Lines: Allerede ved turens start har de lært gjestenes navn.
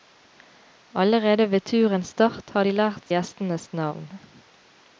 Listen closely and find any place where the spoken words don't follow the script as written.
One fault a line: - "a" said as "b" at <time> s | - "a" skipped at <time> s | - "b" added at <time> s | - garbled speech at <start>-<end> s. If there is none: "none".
none